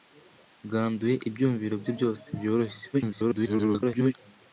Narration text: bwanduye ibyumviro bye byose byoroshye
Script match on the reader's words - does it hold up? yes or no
no